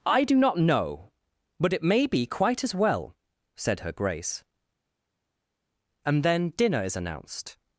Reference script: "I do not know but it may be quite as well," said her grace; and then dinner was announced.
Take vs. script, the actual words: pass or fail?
fail